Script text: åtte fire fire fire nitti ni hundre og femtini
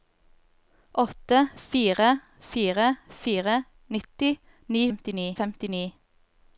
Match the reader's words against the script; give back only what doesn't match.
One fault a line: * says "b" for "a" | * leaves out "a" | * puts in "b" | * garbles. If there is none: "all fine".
* says "femtini" for "hundre"